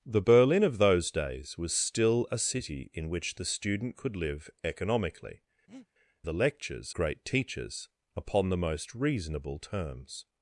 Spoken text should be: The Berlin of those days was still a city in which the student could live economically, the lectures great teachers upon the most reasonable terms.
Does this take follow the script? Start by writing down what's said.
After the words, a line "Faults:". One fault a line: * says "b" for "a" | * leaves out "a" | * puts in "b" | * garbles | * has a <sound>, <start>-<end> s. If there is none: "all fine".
The Berlin of those days was still a city in which the student could live economically, the lectures great teachers upon the most reasonable terms.
Faults:
* has a breath, 5.7-5.9 s